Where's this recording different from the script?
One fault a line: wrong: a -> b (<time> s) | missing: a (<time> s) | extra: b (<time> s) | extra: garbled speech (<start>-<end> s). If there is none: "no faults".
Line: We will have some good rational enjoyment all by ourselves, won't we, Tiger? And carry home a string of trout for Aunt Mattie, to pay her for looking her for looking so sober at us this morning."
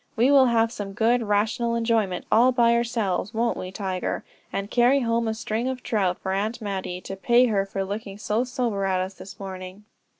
missing: her for looking (8.2 s)